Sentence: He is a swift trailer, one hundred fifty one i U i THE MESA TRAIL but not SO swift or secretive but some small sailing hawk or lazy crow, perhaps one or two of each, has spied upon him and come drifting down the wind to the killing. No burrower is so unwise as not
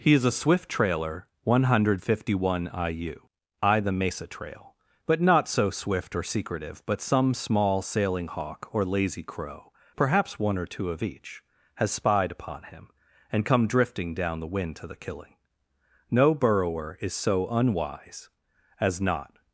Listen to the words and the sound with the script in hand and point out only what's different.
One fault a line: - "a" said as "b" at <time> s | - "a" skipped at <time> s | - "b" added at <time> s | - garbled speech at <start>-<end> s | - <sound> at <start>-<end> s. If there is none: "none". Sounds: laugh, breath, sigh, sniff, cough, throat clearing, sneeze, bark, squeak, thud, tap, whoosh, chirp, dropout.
none